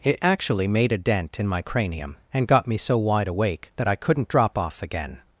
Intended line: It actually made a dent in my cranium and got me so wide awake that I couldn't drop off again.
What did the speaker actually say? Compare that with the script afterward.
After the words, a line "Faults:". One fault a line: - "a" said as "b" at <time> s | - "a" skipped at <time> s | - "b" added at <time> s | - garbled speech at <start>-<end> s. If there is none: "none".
It actually made a dent in my cranium and got me so wide awake that I couldn't drop off again.
Faults:
none